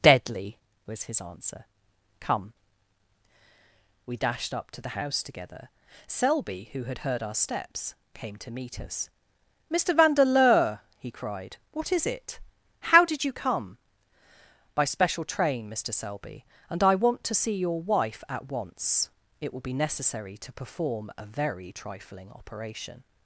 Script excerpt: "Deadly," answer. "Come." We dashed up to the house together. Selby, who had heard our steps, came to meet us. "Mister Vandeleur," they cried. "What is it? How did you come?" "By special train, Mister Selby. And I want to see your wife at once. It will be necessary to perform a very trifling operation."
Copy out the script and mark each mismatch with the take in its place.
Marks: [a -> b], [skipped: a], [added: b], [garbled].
"Deadly," [added: was his] answer. "Come." We dashed up to the house together. Selby, who had heard our steps, came to meet us. "Mister Vandeleur," [they -> he] cried. "What is it? How did you come?" "By special train, Mister Selby. And I want to see your wife at once. It will be necessary to perform a very trifling operation."